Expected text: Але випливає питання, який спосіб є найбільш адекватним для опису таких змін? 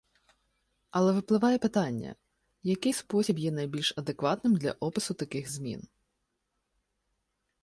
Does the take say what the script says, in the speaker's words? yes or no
yes